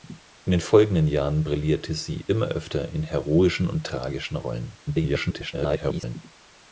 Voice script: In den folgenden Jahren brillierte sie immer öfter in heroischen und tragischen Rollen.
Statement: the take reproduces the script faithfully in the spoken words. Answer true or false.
false